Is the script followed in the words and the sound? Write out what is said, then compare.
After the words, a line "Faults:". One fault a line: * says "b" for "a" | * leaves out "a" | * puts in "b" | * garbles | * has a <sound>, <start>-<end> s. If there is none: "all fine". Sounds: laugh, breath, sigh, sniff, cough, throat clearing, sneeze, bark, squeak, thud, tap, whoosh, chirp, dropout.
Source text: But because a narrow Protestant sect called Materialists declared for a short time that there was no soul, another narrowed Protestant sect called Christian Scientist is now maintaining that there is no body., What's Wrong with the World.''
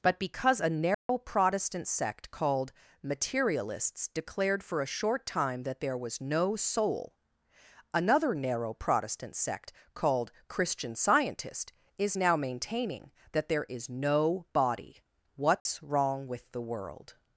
But because a narrow Protestant sect called Materialists declared for a short time that there was no soul, another narrow Protestant sect called Christian Scientist is now maintaining that there is no body., What's Wrong with the World.''
Faults:
* has a dropout, 0.9-1.1 s
* says "narrow" for "narrowed"
* has a dropout, 15.6-15.7 s